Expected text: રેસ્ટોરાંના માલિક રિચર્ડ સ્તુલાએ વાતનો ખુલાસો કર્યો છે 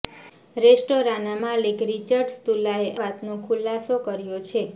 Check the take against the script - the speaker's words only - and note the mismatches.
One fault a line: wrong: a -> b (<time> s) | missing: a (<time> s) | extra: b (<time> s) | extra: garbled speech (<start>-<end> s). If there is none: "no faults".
no faults